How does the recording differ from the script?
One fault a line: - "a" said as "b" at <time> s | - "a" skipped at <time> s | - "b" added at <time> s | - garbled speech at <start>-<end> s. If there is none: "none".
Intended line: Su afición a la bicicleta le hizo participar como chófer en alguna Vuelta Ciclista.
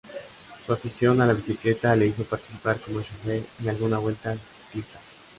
none